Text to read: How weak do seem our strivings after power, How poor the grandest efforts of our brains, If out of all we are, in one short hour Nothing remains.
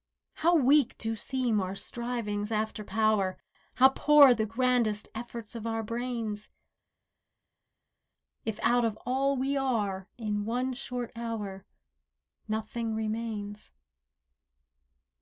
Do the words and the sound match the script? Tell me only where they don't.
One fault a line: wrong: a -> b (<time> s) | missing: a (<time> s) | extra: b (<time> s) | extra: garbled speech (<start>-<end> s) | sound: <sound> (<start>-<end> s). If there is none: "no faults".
no faults